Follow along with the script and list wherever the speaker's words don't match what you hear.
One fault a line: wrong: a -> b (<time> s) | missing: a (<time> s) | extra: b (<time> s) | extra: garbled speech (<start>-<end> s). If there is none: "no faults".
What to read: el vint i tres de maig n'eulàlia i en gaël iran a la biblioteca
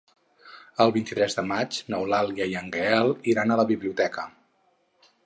no faults